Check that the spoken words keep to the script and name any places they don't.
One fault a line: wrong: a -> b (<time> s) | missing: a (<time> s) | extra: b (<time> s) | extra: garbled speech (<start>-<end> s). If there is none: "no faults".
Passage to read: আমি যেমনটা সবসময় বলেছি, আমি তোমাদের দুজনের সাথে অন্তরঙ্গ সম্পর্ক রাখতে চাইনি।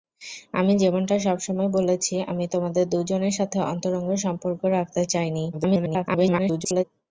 extra: garbled speech (5.5-6.8 s)